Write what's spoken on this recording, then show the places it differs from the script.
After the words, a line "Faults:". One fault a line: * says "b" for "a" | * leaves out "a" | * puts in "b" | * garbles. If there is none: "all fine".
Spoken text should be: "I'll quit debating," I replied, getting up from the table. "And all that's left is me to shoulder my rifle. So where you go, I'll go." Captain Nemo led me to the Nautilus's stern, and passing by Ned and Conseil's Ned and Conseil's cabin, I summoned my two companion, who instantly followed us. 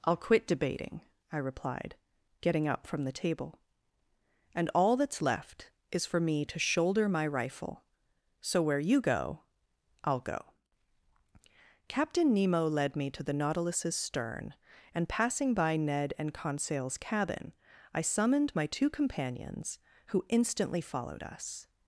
"I'll quit debating," I replied, getting up from the table. "And all that's left is for me to shoulder my rifle. So where you go, I'll go." Captain Nemo led me to the Nautilus's stern, and passing by Ned and Conseil's cabin, I summoned my two companions, who instantly followed us.
Faults:
* puts in "for"
* leaves out "Ned and Conseil's"
* says "companions" for "companion"